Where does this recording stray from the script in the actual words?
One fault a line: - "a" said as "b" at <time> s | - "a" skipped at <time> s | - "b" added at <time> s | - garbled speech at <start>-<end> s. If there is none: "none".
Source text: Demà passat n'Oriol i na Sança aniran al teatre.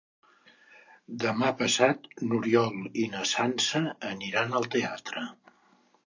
none